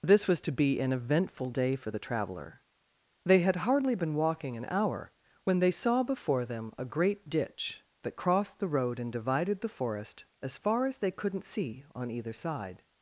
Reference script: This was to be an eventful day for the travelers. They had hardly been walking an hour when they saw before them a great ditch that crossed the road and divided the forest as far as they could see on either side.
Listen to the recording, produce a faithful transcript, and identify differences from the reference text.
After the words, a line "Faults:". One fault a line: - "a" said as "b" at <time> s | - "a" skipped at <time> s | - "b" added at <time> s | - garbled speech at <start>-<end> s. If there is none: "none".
This was to be an eventful day for the traveler. They had hardly been walking an hour when they saw before them a great ditch that crossed the road and divided the forest as far as they couldn't see on either side.
Faults:
- "travelers" said as "traveler" at 2.0 s
- "could" said as "couldn't" at 11.1 s